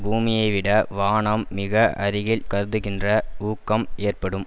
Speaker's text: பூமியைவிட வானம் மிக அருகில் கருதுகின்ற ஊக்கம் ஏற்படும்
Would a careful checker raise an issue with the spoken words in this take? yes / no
no